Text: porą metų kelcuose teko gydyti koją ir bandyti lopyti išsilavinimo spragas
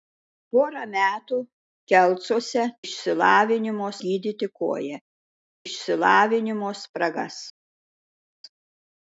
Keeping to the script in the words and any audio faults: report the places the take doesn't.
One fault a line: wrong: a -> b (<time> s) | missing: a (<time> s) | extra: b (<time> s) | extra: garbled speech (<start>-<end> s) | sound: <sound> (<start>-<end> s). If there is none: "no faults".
wrong: teko -> išsilavinimo (2.9 s)
missing: ir bandyti lopyti (5.0 s)